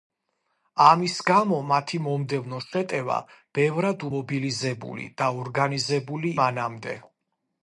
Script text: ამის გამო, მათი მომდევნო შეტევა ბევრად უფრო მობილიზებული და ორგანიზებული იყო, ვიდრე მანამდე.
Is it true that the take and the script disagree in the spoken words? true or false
true